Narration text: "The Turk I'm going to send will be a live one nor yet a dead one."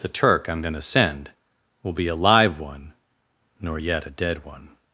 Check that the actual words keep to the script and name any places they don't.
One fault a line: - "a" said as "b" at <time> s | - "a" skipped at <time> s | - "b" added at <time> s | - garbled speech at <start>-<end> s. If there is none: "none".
none